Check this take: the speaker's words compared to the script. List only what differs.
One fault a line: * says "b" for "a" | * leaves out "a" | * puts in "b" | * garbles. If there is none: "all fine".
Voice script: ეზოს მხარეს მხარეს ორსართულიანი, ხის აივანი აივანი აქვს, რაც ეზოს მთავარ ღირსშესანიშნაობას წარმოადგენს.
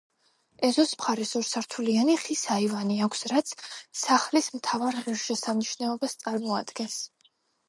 * leaves out "მხარეს"
* leaves out "აივანი"
* says "სახლის" for "ეზოს"